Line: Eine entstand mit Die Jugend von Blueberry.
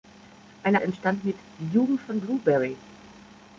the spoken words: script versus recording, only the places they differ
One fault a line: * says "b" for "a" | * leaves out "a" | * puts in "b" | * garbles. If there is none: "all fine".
all fine